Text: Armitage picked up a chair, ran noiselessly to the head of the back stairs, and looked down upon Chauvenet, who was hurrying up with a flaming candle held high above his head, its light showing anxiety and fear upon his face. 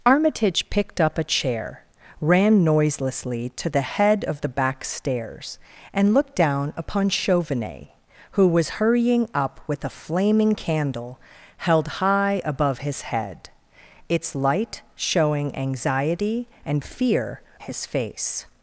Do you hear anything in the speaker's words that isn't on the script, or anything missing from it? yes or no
yes